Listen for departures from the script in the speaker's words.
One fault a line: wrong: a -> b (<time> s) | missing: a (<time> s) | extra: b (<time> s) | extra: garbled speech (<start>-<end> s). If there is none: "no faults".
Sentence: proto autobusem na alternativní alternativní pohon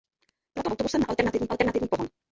no faults